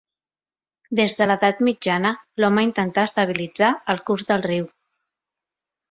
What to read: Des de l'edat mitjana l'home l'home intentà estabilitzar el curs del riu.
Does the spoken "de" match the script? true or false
true